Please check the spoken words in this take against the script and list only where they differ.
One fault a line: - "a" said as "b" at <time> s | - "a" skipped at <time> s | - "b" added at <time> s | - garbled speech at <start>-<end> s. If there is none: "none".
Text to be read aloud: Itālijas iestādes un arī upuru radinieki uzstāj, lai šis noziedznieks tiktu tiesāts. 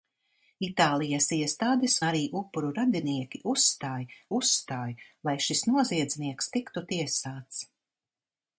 - "un" skipped at 2.0 s
- "uzstāj" added at 4.4 s